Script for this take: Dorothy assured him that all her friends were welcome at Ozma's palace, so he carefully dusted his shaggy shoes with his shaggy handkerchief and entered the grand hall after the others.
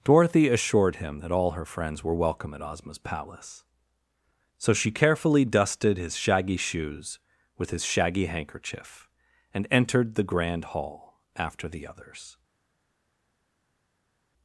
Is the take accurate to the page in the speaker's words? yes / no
no